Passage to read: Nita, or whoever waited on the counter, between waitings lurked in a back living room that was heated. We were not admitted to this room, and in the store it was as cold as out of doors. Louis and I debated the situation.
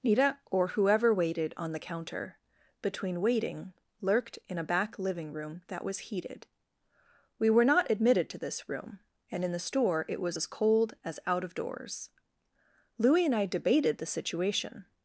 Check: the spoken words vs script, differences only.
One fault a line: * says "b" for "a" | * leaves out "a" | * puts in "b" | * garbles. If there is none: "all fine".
* says "waiting" for "waitings"